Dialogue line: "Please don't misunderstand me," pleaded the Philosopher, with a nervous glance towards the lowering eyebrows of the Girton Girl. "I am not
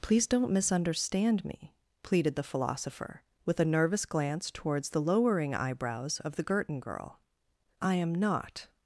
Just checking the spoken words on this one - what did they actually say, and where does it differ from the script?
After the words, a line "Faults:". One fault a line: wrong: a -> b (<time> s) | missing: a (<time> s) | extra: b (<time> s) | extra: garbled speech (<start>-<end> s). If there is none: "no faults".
"Please don't misunderstand me," pleaded the Philosopher, with a nervous glance towards the lowering eyebrows of the Girton Girl. "I am not
Faults:
no faults